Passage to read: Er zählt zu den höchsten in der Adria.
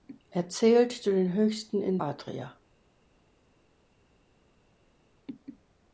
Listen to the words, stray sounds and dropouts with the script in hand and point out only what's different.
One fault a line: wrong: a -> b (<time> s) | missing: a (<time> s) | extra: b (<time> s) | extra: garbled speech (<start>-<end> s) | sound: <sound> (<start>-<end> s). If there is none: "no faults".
missing: der (2.0 s)